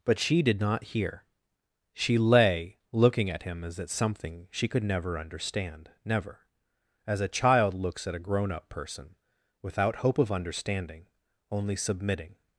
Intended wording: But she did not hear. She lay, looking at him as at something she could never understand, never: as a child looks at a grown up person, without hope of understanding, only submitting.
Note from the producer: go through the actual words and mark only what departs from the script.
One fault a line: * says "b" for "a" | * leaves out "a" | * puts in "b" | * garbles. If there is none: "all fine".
all fine